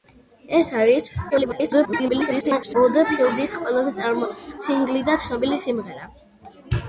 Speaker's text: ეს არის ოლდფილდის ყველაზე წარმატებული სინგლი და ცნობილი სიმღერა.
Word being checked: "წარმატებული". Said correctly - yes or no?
no